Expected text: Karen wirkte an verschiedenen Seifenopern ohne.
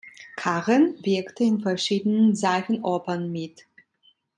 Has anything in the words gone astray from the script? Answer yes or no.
yes